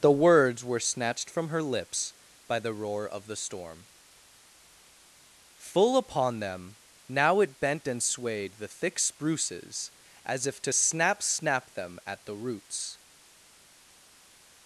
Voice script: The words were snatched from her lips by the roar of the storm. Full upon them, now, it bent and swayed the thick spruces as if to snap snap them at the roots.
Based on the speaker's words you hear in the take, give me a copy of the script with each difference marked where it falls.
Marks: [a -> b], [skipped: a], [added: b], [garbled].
The words were snatched from her lips by the roar of the storm. Full upon them, now, it bent and swayed the thick spruces as if to snap snap them at the roots.